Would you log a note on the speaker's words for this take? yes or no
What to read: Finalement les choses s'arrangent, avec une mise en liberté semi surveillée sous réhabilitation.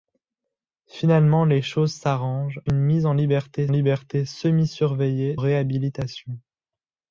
yes